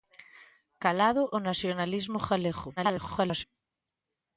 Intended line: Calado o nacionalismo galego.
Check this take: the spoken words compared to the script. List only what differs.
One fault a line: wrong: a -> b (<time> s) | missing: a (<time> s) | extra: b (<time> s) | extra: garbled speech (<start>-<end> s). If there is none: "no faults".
extra: garbled speech (2.8-3.4 s)